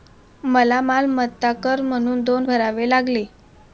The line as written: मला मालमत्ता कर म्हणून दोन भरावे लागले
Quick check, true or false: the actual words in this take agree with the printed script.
true